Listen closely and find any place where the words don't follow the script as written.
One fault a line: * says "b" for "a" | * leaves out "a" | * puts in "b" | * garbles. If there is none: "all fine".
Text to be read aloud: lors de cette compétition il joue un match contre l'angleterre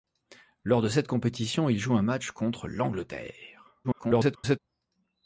* garbles